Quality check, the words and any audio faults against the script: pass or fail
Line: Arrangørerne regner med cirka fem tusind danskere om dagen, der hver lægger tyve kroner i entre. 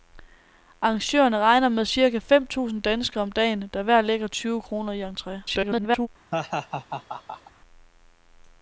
fail